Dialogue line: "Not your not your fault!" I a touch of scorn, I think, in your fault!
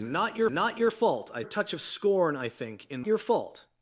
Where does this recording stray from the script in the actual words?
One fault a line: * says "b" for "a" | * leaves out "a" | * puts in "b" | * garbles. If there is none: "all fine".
all fine